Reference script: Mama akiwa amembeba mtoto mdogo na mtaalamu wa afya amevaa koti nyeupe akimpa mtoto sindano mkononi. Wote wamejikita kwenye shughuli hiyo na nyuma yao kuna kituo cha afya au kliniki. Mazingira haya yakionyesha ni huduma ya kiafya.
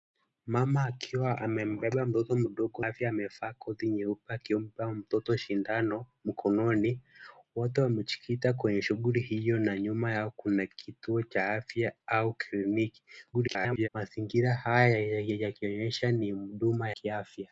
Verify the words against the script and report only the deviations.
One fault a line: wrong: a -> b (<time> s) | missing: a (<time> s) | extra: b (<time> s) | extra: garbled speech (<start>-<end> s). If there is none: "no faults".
missing: na mtaalamu wa (2.9 s)
extra: garbled speech (13.3-13.9 s)
missing: ya (16.9 s)